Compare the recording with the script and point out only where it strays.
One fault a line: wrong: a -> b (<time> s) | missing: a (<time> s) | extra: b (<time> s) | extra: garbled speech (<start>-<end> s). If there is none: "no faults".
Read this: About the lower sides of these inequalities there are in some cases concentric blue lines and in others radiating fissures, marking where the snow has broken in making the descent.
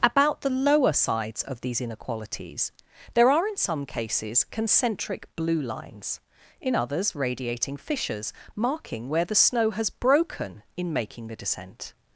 missing: and (6.2 s)